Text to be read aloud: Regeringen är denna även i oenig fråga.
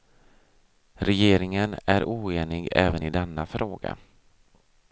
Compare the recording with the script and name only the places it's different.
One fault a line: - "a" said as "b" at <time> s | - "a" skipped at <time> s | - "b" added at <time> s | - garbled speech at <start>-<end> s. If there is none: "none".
- "denna" said as "oenig" at 2.0 s
- "oenig" said as "denna" at 3.1 s